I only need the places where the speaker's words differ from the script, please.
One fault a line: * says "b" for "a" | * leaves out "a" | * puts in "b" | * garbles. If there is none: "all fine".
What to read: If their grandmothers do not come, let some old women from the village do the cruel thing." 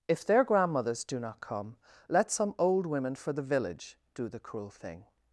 * says "for" for "from"